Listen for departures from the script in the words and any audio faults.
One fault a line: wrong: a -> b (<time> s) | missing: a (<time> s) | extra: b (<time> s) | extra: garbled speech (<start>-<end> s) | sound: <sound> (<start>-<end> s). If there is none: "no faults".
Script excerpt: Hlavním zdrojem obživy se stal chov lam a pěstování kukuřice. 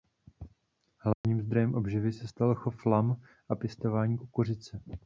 sound: dropout (1.1-1.2 s)